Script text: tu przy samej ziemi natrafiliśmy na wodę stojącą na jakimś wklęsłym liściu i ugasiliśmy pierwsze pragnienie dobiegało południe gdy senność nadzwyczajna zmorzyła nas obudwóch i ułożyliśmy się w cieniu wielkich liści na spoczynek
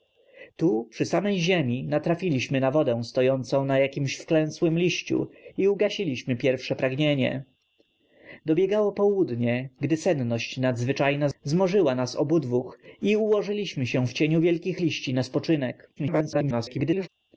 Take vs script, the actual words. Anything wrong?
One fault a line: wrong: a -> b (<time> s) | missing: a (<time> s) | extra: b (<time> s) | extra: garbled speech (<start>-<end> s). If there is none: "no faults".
extra: garbled speech (16.0-17.1 s)